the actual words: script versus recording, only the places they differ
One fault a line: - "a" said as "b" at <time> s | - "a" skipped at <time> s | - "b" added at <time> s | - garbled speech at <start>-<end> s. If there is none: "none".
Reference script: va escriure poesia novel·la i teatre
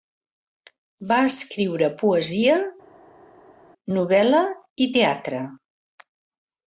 none